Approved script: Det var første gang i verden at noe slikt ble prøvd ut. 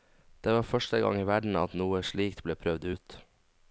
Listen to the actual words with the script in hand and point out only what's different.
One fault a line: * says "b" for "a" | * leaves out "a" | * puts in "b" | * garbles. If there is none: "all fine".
all fine